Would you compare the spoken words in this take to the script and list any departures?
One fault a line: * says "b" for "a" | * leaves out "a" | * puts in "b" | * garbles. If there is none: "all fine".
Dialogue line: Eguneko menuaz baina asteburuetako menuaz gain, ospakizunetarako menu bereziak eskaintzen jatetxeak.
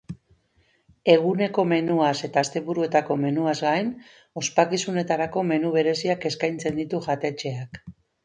* says "eta" for "baina"
* puts in "ditu"